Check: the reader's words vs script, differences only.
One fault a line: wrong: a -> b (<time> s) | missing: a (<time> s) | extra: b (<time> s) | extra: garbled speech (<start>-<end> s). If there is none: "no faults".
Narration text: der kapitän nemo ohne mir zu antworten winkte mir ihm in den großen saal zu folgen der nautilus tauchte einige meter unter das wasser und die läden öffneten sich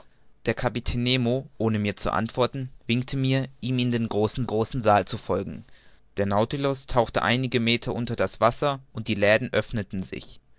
extra: großen (4.5 s)